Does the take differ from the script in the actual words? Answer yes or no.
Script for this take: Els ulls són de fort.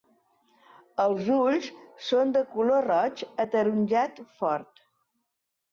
yes